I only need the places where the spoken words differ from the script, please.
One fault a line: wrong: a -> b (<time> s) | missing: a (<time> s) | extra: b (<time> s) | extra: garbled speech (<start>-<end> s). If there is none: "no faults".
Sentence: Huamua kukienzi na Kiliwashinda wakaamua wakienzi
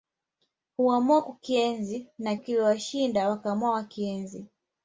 no faults